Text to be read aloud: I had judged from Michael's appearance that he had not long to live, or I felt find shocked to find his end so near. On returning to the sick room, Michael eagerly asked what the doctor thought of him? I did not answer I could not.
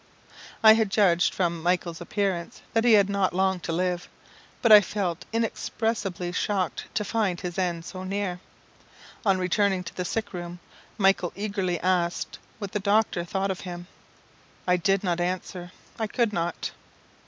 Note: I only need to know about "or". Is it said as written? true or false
false